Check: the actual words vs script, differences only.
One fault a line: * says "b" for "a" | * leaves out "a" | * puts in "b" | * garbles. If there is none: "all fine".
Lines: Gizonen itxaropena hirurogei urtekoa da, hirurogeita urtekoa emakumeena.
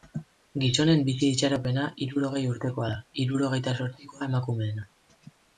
* puts in "bizi"
* says "zortzikoa" for "urtekoa"